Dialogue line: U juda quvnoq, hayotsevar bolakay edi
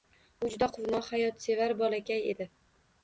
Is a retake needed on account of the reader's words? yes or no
no